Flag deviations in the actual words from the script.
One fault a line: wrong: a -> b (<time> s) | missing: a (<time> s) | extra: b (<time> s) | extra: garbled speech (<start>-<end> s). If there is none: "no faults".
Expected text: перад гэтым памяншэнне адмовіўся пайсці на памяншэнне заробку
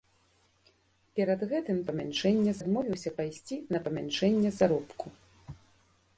no faults